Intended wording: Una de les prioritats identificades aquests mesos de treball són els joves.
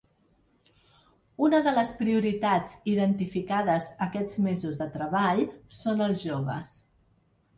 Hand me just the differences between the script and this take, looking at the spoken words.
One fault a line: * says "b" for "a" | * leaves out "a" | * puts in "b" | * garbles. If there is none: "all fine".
all fine